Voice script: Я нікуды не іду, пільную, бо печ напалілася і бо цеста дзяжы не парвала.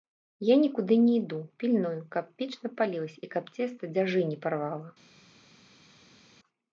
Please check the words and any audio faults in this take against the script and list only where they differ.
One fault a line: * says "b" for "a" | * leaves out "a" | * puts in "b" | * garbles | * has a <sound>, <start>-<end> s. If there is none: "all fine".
* says "каб" for "бо"
* says "каб" for "бо"